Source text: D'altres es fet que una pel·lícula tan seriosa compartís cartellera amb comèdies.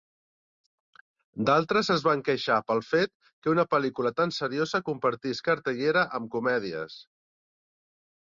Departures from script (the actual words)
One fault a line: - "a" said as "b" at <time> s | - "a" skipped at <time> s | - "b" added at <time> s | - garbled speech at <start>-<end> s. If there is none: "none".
- "van queixar pel" added at 2.1 s